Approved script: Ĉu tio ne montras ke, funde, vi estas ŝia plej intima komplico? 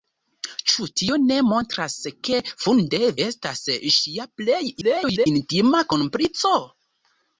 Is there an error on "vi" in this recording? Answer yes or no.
yes